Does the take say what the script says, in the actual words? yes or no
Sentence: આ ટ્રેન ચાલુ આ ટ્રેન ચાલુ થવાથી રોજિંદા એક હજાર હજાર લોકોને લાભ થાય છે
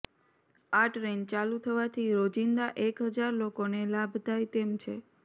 no